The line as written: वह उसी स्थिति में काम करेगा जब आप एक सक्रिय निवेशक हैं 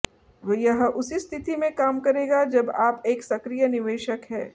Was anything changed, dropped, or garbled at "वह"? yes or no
yes